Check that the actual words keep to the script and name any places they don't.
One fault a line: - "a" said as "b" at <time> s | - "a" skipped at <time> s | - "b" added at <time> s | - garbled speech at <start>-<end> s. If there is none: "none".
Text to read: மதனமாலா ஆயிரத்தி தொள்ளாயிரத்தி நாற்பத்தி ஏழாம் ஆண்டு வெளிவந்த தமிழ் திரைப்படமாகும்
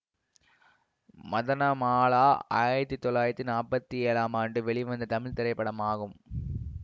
none